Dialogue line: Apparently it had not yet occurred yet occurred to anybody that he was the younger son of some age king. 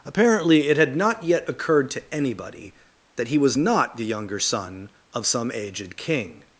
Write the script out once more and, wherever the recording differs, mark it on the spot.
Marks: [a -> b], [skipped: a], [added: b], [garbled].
Apparently it had not yet occurred [skipped: yet occurred] to anybody that he was [added: not] the younger son of some [age -> aged] king.